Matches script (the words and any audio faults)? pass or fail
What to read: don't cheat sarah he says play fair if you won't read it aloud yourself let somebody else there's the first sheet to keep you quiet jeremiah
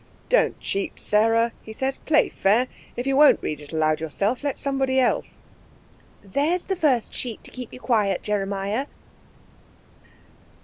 pass